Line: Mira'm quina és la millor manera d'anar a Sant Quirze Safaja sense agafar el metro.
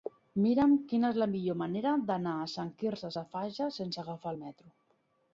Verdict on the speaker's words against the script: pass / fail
pass